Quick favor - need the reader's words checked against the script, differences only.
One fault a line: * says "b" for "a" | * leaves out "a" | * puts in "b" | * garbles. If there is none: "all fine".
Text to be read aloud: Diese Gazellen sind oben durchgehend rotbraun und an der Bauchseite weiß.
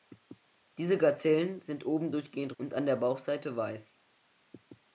* leaves out "rotbraun"